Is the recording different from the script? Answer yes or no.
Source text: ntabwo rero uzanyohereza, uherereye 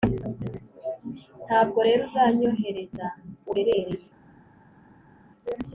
no